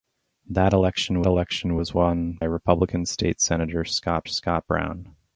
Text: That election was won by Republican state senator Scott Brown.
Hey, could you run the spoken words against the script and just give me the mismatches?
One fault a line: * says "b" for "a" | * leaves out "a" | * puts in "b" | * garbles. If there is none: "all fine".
* puts in "election"
* leaves out "by"
* puts in "Scott"